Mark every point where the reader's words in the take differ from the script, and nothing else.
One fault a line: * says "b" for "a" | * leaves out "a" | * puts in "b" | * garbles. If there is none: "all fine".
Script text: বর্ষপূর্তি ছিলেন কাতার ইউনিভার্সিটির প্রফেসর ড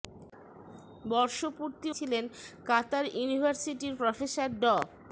all fine